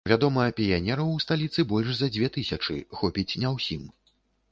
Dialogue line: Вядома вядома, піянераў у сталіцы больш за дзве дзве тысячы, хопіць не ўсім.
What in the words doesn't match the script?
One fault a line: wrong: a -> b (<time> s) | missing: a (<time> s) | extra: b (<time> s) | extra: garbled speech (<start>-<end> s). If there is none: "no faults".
missing: вядома (0.4 s)
missing: дзве (2.3 s)